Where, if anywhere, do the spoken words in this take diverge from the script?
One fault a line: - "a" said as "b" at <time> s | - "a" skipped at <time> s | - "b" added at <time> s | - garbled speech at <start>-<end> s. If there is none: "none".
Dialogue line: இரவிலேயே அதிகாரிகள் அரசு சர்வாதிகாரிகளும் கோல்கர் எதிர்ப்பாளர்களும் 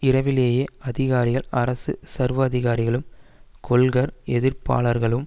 none